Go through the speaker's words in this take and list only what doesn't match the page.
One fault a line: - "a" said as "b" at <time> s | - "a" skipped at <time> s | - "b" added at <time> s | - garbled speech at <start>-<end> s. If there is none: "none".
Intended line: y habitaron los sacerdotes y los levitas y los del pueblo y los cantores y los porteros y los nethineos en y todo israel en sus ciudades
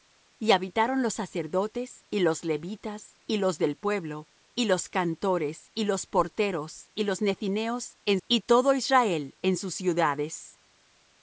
none